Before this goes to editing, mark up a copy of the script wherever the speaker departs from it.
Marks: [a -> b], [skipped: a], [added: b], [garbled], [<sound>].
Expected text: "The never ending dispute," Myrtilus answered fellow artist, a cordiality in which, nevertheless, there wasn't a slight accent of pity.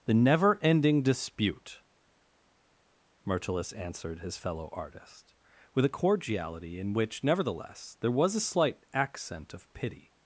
"The never ending dispute," Myrtilus answered [added: his] fellow artist, [added: with] a cordiality in which, nevertheless, there [wasn't -> was] a slight accent of pity.